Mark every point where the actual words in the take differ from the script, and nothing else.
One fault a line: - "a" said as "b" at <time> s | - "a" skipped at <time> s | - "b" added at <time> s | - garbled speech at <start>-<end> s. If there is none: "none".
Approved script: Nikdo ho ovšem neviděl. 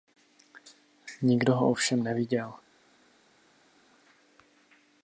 none